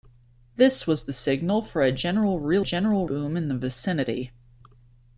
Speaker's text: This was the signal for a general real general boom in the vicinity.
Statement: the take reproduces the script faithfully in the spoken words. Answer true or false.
true